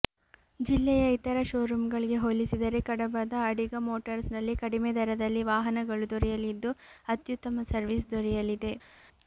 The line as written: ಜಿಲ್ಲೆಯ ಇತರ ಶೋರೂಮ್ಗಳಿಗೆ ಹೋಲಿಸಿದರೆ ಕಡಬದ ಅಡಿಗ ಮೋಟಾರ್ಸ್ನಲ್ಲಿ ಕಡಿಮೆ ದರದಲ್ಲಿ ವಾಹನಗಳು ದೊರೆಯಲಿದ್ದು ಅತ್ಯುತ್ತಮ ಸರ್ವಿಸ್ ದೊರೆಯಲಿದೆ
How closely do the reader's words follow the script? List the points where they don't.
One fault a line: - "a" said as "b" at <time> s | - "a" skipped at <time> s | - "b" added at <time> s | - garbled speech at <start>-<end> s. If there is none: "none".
none